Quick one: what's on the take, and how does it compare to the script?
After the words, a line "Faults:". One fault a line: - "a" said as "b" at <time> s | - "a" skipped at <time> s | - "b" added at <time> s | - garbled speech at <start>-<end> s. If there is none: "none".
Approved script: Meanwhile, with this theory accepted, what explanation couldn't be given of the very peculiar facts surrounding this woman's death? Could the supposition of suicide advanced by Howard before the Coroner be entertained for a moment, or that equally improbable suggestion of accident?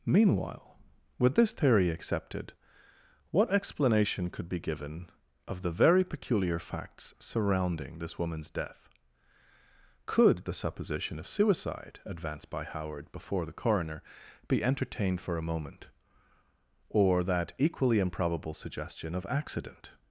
Meanwhile, with this theory accepted, what explanation could be given of the very peculiar facts surrounding this woman's death? Could the supposition of suicide advanced by Howard before the Coroner be entertained for a moment, or that equally improbable suggestion of accident?
Faults:
- "couldn't" said as "could" at 4.3 s